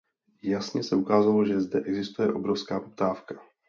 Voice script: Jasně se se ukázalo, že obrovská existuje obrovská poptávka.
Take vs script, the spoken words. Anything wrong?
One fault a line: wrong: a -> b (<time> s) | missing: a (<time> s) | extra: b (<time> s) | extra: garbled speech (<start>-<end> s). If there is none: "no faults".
missing: se (0.9 s)
wrong: obrovská -> zde (1.6 s)